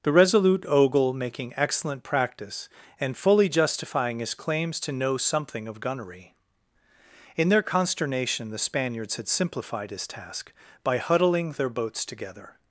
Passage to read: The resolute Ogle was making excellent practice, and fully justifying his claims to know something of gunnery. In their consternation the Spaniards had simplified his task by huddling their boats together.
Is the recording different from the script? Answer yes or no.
yes